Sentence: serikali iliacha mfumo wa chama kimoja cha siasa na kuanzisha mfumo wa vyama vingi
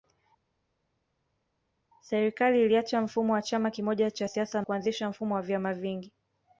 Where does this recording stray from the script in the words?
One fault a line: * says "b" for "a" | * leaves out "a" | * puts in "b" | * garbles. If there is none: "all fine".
* leaves out "na"